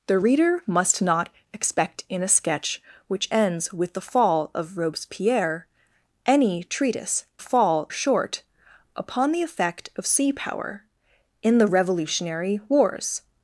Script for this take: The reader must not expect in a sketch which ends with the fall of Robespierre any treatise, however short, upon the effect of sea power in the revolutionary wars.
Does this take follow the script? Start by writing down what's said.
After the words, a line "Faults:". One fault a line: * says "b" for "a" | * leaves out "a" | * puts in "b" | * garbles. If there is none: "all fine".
The reader must not expect in a sketch which ends with the fall of Robespierre any treatise, fall short, upon the effect of sea power in the revolutionary wars.
Faults:
* says "fall" for "however"